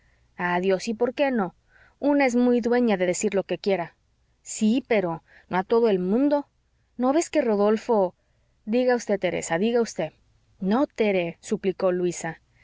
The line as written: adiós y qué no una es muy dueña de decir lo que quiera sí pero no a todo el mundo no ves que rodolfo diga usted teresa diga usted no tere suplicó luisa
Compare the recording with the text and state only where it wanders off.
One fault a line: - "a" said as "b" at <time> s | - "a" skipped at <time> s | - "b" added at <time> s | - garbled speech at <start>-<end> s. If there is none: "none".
- "por" added at 0.9 s